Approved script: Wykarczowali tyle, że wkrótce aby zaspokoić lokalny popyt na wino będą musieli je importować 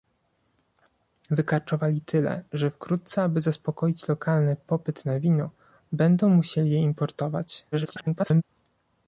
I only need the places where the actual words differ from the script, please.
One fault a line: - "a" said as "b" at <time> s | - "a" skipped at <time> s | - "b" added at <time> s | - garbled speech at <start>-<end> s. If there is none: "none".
- garbled speech at 7.7-8.4 s